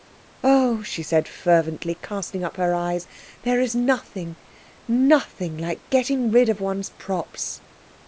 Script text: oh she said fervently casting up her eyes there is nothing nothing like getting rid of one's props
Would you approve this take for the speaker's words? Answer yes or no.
yes